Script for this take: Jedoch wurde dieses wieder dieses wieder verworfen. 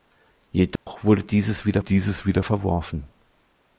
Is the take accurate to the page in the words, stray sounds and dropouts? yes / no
no